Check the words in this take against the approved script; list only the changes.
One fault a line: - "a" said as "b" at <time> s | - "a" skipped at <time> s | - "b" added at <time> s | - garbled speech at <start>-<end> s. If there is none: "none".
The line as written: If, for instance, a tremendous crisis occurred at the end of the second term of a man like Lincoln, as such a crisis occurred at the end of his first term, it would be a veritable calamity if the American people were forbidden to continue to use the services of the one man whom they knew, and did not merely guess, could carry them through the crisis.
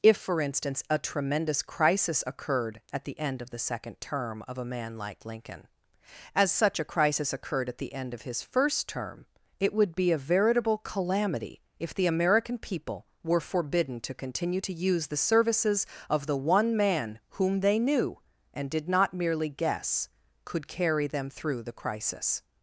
none